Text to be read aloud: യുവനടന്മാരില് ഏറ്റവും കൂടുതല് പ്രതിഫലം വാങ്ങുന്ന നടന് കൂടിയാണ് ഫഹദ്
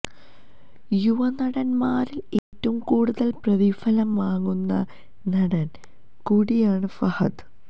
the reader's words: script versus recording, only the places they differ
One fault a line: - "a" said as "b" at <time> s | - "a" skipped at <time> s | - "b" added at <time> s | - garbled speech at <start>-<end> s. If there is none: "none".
none